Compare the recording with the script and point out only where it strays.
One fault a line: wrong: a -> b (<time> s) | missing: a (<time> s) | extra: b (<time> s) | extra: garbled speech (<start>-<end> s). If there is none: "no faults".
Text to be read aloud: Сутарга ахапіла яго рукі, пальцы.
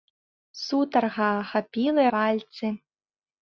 missing: яго рукі (2.0 s)